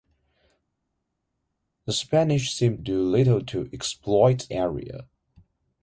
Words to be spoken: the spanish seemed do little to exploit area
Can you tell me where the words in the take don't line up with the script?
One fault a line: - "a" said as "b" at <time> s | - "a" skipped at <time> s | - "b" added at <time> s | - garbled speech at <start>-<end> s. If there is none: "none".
none